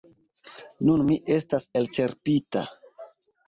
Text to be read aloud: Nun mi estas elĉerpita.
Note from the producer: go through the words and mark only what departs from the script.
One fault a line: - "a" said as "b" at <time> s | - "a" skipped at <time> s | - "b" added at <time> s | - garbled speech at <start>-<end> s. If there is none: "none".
none